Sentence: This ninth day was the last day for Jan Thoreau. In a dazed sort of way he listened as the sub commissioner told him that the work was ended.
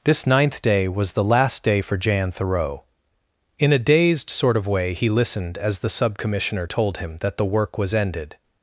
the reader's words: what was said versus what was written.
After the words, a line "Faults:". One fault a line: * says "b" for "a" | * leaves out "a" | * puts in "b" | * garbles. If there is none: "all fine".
This ninth day was the last day for Jan Thoreau. In a dazed sort of way he listened as the sub commissioner told him that the work was ended.
Faults:
all fine